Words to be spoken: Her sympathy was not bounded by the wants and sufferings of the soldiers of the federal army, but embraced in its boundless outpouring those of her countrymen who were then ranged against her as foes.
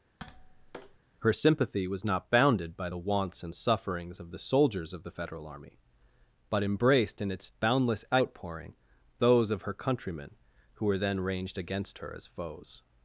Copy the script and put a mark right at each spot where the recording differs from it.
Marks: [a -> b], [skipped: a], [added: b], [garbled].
Her sympathy was not bounded by the wants and sufferings of the soldiers of the federal army, but embraced in its boundless outpouring those of her countrymen who were then ranged against her as foes.